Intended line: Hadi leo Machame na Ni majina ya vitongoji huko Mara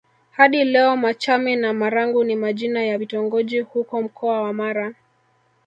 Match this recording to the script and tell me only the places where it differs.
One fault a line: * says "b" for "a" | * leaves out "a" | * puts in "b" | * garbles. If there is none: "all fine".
* puts in "Marangu"
* puts in "Mkoa wa"